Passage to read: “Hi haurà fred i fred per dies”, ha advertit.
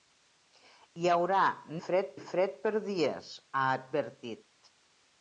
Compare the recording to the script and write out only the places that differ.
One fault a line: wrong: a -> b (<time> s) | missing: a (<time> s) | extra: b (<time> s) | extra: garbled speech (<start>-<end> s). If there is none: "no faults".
no faults